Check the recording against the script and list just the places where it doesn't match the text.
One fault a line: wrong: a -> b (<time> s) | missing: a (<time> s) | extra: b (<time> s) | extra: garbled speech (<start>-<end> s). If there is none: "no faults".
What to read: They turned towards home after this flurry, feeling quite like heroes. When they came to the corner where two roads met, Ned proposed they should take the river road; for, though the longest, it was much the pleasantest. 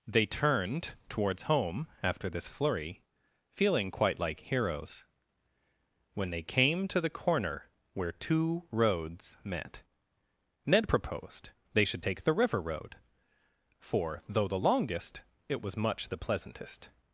no faults